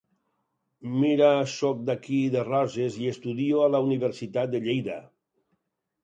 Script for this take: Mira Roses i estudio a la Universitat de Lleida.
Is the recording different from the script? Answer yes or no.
yes